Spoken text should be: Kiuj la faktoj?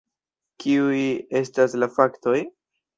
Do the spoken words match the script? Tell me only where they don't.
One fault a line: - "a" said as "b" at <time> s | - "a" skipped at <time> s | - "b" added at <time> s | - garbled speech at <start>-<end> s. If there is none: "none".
- "estas" added at 1.4 s